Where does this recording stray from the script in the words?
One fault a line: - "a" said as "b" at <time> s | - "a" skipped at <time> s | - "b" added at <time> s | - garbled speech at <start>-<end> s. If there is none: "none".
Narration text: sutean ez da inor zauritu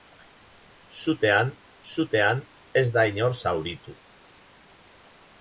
- "sutean" added at 1.9 s